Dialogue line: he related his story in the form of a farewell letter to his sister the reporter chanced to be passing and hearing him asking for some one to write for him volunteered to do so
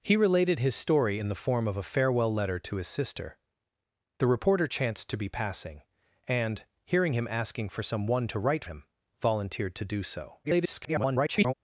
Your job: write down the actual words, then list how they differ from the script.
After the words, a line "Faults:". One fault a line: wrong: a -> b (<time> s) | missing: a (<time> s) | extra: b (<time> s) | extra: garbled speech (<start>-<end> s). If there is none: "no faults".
he related his story in the form of a farewell letter to his sister the reporter chanced to be passing and hearing him asking for some one to write him volunteered to do so [garbled]
Faults:
missing: for (8.7 s)
extra: garbled speech (10.4-11.5 s)